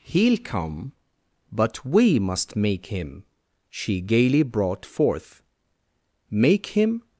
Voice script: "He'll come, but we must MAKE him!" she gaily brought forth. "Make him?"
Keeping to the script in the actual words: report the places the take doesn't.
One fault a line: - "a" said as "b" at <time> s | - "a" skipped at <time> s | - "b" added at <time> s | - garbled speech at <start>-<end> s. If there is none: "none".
none